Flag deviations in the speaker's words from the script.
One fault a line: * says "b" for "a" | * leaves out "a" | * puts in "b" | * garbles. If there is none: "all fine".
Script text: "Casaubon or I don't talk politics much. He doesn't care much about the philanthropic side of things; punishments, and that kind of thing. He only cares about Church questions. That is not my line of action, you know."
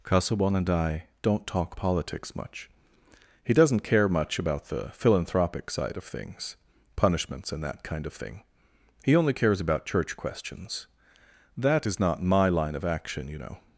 * says "and" for "or"